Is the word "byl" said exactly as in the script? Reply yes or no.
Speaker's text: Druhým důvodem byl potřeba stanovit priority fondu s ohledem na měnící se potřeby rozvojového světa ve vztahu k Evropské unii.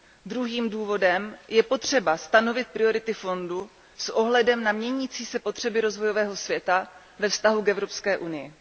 no